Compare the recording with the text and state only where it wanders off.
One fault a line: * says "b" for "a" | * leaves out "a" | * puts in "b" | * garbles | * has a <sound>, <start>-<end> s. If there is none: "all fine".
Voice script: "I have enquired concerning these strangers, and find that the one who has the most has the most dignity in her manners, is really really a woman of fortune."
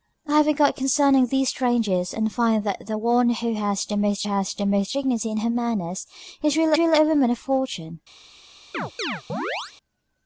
* has a chirp, 8.7-9.7 s